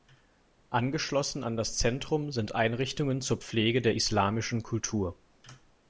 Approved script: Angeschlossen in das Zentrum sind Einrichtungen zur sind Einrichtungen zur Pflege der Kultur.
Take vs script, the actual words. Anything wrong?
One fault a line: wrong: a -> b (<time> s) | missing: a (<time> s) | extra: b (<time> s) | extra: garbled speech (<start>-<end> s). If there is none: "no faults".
wrong: in -> an (1.4 s)
missing: sind Einrichtungen zur (3.3 s)
extra: islamischen (3.9 s)